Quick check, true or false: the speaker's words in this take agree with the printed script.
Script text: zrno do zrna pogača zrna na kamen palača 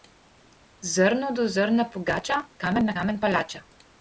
false